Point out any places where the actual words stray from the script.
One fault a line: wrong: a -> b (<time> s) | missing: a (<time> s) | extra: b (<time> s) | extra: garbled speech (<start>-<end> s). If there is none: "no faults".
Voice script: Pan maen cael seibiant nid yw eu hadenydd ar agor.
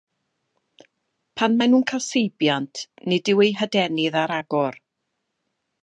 extra: nhw'n (1.7 s)